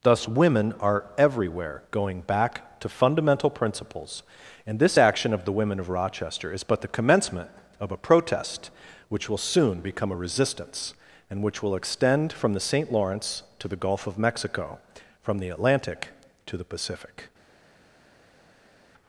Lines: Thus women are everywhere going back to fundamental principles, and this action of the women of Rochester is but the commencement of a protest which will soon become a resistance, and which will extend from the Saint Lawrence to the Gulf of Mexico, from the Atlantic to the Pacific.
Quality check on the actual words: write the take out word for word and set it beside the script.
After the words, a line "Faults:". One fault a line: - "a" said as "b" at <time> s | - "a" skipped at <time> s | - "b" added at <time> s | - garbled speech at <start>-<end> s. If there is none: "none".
Thus women are everywhere going back to fundamental principles, and this action of the women of Rochester is but the commencement of a protest which will soon become a resistance, and which will extend from the Saint Lawrence to the Gulf of Mexico, from the Atlantic to the Pacific.
Faults:
none